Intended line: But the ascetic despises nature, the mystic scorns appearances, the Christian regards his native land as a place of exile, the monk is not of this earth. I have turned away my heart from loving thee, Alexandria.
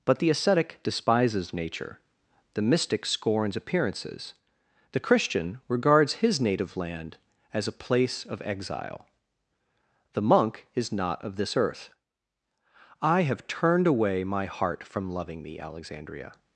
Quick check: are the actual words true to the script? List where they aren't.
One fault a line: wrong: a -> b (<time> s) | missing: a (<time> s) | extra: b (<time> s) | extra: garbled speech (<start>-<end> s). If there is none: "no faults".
no faults